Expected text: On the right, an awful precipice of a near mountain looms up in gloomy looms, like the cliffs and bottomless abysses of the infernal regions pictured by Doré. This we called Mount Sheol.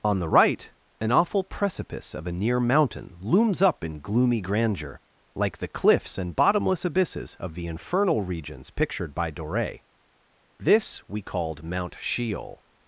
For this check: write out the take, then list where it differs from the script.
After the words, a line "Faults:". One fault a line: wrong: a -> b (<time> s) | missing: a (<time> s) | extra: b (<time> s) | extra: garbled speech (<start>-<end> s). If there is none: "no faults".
On the right, an awful precipice of a near mountain looms up in gloomy grandeur, like the cliffs and bottomless abysses of the infernal regions pictured by Doré. This we called Mount Sheol.
Faults:
wrong: looms -> grandeur (4.4 s)